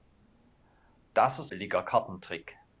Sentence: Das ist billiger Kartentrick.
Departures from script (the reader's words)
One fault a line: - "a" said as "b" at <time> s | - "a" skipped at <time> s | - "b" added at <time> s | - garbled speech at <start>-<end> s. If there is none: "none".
none